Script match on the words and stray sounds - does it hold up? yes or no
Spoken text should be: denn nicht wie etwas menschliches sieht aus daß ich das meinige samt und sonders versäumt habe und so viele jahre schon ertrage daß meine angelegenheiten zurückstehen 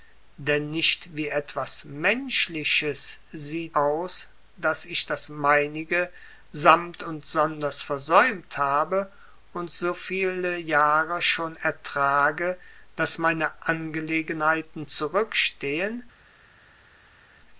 yes